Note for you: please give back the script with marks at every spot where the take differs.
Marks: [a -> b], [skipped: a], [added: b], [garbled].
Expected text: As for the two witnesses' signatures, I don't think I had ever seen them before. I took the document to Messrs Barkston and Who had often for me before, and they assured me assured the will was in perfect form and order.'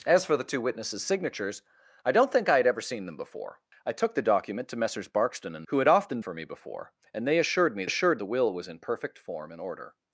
As for the two witnesses' signatures, I don't think I had ever seen them before. I took the document to Messrs Barkston and Who had often for me before, and they assured me assured the will was in perfect form and order.'